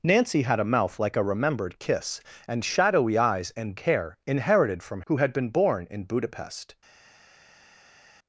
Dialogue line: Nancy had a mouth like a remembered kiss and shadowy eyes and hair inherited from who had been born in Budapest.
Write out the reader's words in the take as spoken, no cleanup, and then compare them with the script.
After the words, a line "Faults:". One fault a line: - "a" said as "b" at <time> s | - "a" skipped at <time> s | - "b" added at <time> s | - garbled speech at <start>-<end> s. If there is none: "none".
Nancy had a mouth like a remembered kiss and shadowy eyes and hair inherited from who had been born in Budapest.
Faults:
none